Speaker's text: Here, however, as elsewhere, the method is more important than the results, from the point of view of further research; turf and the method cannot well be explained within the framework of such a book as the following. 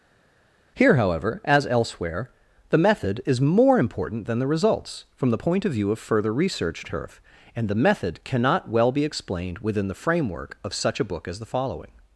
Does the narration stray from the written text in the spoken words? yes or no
no